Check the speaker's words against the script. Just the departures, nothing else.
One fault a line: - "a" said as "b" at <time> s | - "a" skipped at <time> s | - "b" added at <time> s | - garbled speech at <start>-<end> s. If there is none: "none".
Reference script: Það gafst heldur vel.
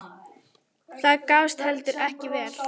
- "ekki" added at 2.1 s